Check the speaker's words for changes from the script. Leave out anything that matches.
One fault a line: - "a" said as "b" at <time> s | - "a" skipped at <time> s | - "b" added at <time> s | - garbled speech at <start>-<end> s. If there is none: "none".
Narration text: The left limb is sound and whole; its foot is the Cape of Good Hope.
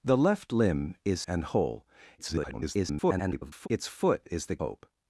- "sound" skipped at 1.2 s
- garbled speech at 2.2-3.7 s
- "Cape of Good" skipped at 4.6 s